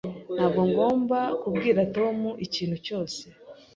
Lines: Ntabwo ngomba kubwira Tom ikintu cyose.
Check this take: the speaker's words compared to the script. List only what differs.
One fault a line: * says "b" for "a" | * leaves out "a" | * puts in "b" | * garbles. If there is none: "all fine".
all fine